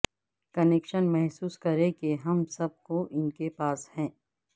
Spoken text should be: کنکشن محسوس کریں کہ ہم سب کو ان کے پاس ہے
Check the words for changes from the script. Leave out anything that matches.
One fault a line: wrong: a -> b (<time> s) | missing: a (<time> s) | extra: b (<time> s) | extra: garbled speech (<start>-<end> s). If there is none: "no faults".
no faults